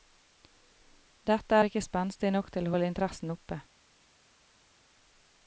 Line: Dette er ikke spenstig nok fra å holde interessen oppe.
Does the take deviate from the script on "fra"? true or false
true